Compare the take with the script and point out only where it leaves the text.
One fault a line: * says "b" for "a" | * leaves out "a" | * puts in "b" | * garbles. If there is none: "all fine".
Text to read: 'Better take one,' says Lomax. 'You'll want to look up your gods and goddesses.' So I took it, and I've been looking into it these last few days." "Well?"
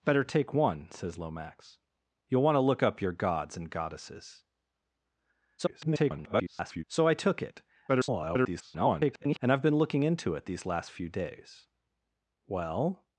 * garbles
* garbles